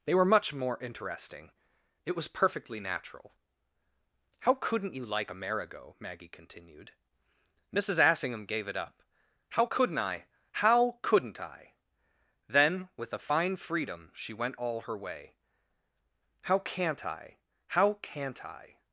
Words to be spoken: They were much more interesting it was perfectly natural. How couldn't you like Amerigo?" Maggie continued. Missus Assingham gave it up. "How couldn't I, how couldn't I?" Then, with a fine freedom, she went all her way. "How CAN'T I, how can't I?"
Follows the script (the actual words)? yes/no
yes